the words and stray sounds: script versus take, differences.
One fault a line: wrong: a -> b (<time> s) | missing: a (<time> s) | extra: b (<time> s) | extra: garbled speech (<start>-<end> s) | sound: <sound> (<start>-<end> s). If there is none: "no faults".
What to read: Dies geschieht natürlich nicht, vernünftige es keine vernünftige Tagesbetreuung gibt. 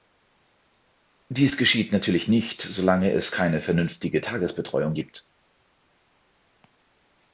wrong: vernünftige -> solange (2.6 s)